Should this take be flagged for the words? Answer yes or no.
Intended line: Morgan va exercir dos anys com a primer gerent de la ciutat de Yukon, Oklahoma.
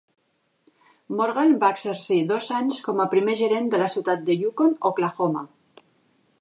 no